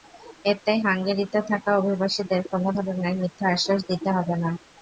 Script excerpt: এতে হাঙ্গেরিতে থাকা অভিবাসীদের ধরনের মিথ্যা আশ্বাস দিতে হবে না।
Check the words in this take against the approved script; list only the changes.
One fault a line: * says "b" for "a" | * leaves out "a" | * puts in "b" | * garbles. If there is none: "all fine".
* puts in "কোনো"